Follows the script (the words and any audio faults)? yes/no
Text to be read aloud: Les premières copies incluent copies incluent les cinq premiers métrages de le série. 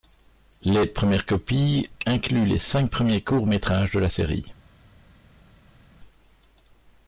no